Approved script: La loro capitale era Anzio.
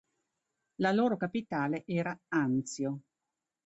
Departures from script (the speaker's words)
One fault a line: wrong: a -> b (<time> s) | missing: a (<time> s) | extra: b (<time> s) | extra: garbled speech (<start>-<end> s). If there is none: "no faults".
no faults